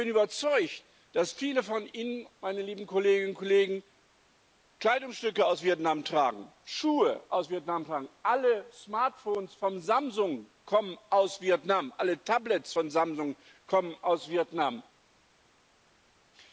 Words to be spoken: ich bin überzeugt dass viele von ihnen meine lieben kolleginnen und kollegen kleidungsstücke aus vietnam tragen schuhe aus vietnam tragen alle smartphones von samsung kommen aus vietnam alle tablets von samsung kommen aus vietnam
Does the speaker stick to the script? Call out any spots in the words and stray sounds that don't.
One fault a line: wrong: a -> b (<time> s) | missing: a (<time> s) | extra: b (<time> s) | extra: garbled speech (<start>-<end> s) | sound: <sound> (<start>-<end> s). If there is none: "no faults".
no faults